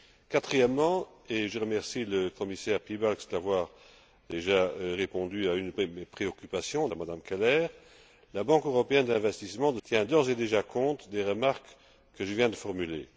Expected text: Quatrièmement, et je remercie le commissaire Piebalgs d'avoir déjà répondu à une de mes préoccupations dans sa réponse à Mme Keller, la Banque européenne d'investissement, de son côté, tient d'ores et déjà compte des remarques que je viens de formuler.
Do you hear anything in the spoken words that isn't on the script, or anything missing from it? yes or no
yes